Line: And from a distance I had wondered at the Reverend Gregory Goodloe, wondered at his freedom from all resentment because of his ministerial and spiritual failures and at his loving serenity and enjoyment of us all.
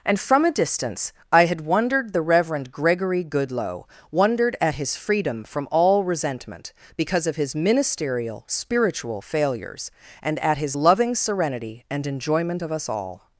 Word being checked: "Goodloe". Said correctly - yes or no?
yes